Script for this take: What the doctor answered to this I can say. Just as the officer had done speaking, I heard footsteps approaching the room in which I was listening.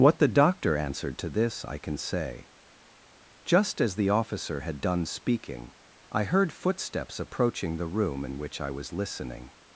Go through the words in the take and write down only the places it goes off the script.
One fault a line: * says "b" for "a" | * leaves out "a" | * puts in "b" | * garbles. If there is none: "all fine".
all fine